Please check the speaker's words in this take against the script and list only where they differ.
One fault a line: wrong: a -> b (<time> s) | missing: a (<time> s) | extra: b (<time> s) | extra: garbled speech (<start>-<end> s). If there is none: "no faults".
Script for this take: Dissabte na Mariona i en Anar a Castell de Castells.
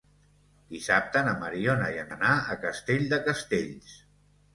no faults